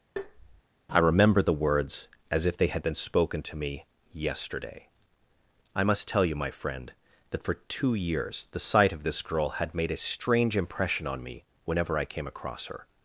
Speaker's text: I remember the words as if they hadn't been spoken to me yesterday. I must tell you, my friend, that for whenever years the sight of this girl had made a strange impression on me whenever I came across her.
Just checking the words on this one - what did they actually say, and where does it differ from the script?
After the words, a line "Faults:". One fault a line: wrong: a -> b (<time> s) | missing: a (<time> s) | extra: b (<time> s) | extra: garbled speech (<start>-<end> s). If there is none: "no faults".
I remember the words as if they had been spoken to me yesterday. I must tell you, my friend, that for two years the sight of this girl had made a strange impression on me whenever I came across her.
Faults:
wrong: hadn't -> had (2.7 s)
wrong: whenever -> two (7.7 s)